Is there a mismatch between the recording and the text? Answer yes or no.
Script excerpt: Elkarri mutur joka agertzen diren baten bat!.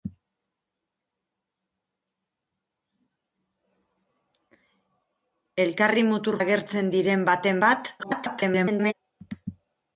yes